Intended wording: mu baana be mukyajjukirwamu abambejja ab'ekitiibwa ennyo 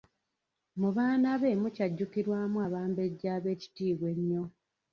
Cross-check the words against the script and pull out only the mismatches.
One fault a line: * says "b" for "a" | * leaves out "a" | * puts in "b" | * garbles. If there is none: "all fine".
all fine